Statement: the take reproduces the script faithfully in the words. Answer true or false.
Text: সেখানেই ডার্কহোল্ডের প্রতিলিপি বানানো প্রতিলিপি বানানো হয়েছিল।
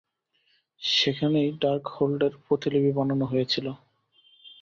false